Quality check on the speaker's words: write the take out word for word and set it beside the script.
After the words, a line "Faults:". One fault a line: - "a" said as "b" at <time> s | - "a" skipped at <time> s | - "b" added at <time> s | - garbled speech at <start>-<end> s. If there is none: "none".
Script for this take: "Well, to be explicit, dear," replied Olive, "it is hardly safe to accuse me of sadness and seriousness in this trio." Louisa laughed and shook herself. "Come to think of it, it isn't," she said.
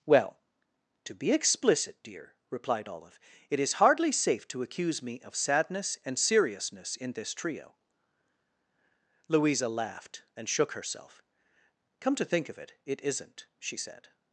"Well, to be explicit, dear," replied Olive, "it is hardly safe to accuse me of sadness and seriousness in this trio." Louisa laughed and shook herself. "Come to think of it, it isn't," she said.
Faults:
none